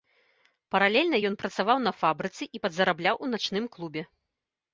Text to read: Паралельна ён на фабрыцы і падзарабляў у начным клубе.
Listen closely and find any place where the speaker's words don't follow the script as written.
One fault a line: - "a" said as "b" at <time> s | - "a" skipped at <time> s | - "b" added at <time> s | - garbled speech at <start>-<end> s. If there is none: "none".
- "працаваў" added at 1.4 s